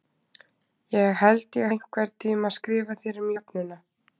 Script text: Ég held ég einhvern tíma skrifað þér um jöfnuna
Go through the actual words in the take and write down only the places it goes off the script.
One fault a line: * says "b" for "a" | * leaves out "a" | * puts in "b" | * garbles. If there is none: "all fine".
all fine